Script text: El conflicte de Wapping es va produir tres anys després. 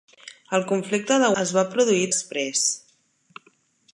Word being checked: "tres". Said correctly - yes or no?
no